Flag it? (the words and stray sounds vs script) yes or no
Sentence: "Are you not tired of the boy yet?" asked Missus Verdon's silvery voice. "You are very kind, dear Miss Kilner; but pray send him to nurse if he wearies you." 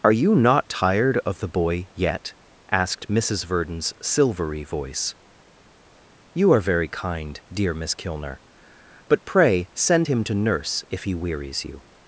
no